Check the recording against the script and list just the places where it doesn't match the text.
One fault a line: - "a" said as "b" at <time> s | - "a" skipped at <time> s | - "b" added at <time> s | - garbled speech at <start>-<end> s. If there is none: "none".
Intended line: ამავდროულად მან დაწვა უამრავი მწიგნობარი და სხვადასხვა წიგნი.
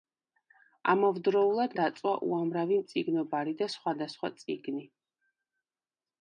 - "მან" skipped at 1.8 s